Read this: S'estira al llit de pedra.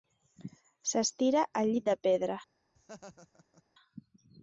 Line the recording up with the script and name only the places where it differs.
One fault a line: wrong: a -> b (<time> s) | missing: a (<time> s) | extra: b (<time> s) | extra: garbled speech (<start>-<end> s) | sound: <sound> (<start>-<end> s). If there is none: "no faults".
sound: laugh (2.8-3.6 s)